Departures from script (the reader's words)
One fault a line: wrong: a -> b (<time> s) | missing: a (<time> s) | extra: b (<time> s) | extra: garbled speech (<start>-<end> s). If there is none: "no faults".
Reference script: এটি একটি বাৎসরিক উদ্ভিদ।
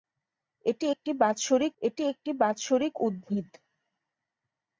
extra: এটি একটি বাৎসরিক (1.8 s)